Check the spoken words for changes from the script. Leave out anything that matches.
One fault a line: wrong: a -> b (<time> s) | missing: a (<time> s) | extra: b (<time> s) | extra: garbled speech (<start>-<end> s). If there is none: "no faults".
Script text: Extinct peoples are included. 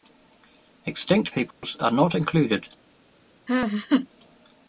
extra: not (1.9 s)